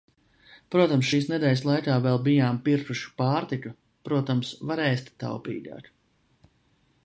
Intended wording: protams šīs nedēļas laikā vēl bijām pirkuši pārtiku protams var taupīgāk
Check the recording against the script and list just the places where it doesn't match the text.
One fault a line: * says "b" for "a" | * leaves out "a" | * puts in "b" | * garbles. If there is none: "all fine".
* puts in "ēst"